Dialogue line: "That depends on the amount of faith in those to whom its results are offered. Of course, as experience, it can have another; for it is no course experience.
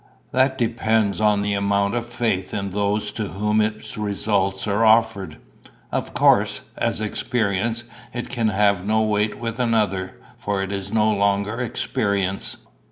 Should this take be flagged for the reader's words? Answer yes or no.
yes